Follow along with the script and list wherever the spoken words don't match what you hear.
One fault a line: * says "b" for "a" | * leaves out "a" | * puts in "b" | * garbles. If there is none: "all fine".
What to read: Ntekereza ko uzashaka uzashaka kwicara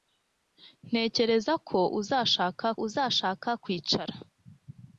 all fine